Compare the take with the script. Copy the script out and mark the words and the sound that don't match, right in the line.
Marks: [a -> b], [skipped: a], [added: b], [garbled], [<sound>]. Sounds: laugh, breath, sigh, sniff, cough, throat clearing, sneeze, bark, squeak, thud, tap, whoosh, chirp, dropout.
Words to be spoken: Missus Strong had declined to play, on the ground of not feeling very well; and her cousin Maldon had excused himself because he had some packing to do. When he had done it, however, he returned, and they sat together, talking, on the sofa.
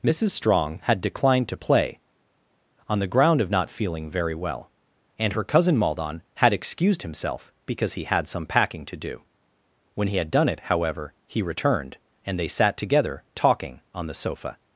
Missus Strong had declined to play, on the ground of not feeling very well; and her cousin Maldon had excused himself because he had some packing to do. When he had done it, however, he returned, and they sat together, talking, on the sofa.